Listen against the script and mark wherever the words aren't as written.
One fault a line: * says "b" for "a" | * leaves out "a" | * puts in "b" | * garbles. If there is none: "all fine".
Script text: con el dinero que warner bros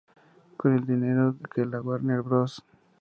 * puts in "la"